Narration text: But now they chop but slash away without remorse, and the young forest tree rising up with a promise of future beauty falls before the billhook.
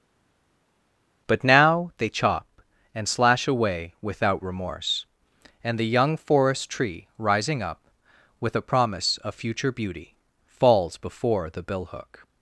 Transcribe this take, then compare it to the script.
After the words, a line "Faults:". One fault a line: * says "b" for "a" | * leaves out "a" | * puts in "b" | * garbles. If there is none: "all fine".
But now they chop and slash away without remorse, and the young forest tree rising up with a promise of future beauty falls before the billhook.
Faults:
* says "and" for "but"